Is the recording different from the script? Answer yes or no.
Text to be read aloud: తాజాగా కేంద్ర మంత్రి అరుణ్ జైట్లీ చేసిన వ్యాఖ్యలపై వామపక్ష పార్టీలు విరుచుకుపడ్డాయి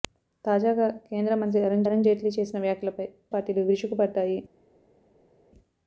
yes